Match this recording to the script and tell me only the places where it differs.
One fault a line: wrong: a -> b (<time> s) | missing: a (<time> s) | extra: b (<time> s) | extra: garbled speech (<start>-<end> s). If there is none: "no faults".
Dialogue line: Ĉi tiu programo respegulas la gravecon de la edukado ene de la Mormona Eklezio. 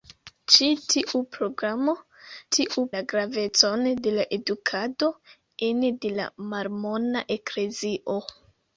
wrong: respegulas -> tiu (2.6 s)